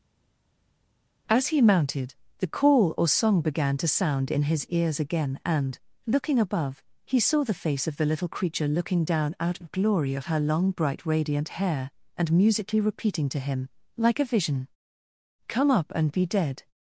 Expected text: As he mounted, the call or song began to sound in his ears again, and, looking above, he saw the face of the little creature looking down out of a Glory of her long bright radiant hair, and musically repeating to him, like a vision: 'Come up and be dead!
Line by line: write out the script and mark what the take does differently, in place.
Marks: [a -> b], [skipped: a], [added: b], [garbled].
As he mounted, the call or song began to sound in his ears again, and, looking above, he saw the face of the little creature looking down out of [skipped: a] Glory of her long bright radiant hair, and musically repeating to him, like a vision: 'Come up and be dead!